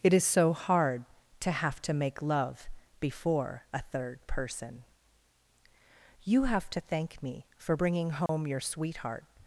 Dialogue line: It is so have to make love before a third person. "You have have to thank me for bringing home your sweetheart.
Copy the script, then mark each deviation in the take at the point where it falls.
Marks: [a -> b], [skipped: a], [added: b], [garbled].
It is so [added: hard to] have to make love before a third person. "You have [skipped: have] to thank me for bringing home your sweetheart.